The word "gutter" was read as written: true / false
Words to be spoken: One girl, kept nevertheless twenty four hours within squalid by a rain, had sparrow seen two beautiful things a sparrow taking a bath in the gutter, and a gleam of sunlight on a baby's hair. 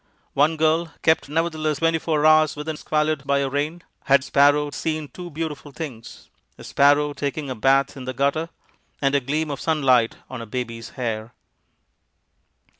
true